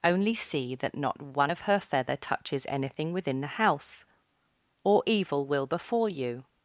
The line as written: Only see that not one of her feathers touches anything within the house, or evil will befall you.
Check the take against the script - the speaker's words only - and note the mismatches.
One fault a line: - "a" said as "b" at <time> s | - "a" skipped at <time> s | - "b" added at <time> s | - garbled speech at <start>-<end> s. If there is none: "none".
- "feathers" said as "feather" at 1.8 s